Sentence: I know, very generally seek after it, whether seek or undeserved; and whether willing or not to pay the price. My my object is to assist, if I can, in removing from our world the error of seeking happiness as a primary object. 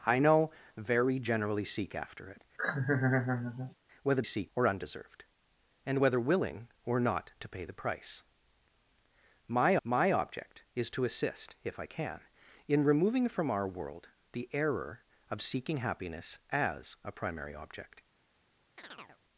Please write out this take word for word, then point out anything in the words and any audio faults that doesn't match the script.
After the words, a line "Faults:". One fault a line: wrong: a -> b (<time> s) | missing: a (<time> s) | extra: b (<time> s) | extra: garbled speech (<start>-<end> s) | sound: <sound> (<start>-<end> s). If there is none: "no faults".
I know, very generally seek after it, whether seek or undeserved; and whether willing or not to pay the price. My my object is to assist, if I can, in removing from our world the error of seeking happiness as a primary object.
Faults:
sound: laugh (2.6-3.7 s)
sound: chirp (18.8-19.2 s)